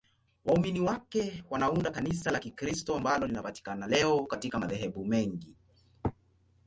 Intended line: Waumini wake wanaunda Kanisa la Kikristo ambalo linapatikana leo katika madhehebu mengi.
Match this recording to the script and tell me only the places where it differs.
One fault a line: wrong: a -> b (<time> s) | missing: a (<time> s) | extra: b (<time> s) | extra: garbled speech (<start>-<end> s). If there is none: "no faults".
no faults